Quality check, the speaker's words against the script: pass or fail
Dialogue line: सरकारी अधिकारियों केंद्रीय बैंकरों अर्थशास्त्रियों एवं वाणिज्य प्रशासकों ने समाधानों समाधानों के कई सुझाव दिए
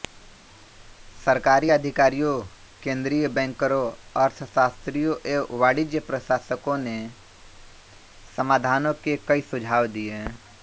fail